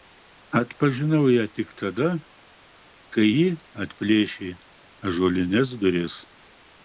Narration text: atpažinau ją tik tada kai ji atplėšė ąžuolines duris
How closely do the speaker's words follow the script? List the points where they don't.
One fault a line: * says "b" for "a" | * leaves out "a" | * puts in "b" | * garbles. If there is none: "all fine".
all fine